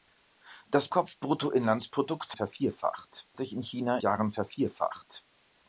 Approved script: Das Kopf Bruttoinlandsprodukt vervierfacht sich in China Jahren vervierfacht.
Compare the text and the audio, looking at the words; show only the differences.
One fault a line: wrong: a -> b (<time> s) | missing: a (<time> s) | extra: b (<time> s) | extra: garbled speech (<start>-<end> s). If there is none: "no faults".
no faults